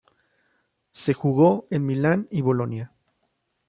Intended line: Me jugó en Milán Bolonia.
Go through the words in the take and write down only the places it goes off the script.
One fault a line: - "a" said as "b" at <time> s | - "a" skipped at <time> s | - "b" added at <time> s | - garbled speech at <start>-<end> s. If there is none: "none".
- "Me" said as "Se" at 0.9 s
- "y" added at 2.3 s